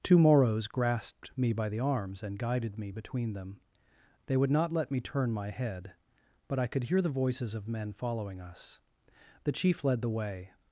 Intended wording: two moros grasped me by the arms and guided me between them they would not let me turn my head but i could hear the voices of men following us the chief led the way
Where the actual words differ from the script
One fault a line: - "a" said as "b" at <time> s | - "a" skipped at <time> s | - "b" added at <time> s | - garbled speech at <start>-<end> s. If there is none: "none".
none